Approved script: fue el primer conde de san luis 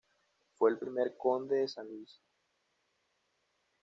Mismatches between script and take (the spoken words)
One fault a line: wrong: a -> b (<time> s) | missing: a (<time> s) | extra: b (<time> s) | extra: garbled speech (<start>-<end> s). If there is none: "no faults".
no faults